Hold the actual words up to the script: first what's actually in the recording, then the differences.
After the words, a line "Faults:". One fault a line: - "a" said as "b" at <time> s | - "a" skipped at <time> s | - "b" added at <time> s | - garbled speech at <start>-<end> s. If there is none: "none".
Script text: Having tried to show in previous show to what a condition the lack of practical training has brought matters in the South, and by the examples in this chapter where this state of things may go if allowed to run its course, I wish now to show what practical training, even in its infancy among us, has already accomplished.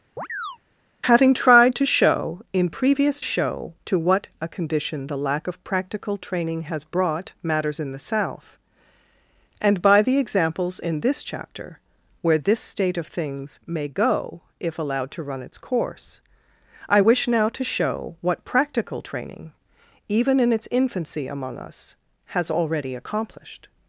Having tried to show in previous show to what a condition the lack of practical training has brought matters in the South, and by the examples in this chapter where this state of things may go if allowed to run its course, I wish now to show what practical training, even in its infancy among us, has already accomplished.
Faults:
none